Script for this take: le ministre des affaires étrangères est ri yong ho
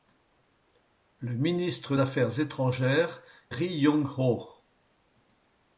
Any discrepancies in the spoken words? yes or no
yes